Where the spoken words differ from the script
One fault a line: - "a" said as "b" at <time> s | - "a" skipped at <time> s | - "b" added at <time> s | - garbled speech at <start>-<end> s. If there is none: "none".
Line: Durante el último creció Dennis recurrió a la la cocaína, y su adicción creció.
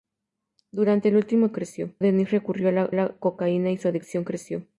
none